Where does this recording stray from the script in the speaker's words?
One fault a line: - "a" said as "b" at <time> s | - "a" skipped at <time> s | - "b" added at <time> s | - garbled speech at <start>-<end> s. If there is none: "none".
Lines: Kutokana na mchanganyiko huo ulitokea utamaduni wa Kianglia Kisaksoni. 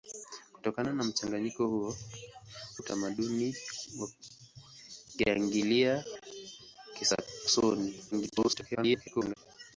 - "ulitokea" skipped at 2.0 s
- garbled speech at 8.1-9.3 s